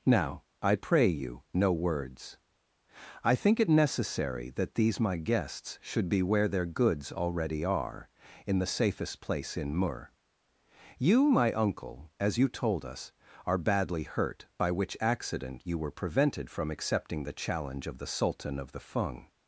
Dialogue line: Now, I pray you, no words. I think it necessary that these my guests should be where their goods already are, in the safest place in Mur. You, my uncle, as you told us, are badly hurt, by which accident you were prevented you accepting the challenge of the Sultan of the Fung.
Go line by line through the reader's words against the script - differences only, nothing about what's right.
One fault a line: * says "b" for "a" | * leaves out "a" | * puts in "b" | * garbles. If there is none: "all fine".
* says "from" for "you"